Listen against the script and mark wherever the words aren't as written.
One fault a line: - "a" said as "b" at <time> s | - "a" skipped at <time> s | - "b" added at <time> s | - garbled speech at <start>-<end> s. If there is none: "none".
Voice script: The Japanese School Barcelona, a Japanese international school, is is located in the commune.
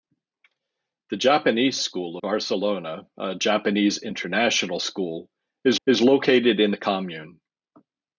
none